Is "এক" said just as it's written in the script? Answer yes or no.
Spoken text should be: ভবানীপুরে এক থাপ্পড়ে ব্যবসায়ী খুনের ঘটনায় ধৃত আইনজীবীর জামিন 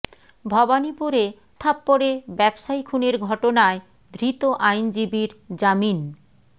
no